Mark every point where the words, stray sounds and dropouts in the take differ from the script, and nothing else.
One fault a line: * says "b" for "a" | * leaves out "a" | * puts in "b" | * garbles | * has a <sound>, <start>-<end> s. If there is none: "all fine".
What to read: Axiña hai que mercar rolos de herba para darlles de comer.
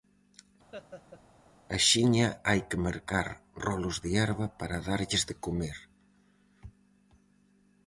* has a laugh, 0.7-1.2 s